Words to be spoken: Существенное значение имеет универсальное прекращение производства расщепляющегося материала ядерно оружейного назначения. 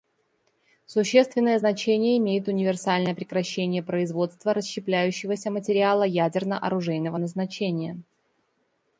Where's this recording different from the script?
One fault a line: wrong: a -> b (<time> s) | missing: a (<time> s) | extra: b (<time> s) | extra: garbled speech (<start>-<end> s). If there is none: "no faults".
no faults